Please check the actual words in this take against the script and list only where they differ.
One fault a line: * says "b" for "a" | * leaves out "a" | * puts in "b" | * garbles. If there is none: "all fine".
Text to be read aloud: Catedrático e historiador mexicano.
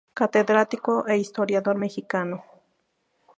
all fine